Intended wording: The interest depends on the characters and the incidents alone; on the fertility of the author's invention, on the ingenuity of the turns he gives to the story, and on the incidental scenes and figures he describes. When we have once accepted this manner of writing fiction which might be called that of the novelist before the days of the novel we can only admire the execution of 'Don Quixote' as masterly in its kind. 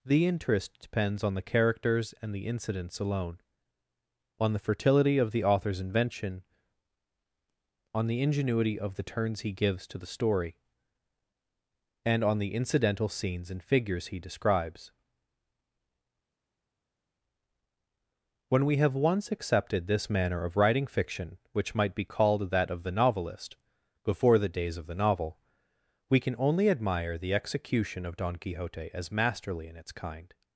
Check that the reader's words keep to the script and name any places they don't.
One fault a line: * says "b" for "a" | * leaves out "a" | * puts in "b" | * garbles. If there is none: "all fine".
all fine